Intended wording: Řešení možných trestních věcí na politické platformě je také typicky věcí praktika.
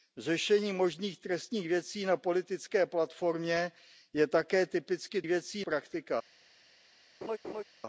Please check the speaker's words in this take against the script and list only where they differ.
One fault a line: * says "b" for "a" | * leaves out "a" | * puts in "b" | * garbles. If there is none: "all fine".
all fine